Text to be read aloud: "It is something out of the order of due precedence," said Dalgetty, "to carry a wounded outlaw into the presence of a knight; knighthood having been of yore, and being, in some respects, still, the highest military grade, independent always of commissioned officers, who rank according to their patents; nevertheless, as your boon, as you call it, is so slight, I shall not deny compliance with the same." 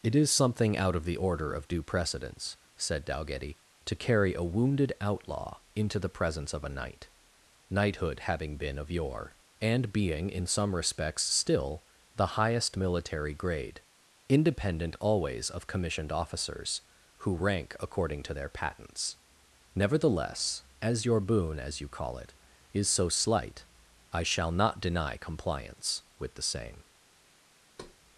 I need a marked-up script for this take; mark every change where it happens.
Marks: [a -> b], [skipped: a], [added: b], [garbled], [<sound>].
"It is something out of the order of due precedence," said Dalgetty, "to carry a wounded outlaw into the presence of a knight; knighthood having been of yore, and being, in some respects, still, the highest military grade, independent always of commissioned officers, who rank according to their patents; nevertheless, as your boon, as you call it, is so slight, I shall not deny compliance with the same." [thud]